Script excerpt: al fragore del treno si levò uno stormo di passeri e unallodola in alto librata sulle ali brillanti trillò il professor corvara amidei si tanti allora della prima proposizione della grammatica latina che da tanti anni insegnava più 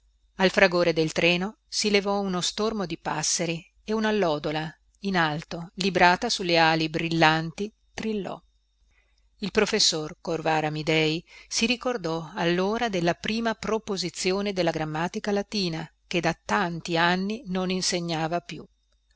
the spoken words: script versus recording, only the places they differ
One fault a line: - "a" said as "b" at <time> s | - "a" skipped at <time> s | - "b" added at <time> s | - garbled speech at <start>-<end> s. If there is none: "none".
- "tanti" said as "ricordò" at 11.7 s
- "non" added at 17.5 s